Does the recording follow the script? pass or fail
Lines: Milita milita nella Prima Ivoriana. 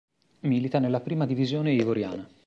fail